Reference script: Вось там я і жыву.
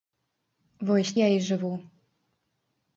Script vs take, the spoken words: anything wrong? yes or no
yes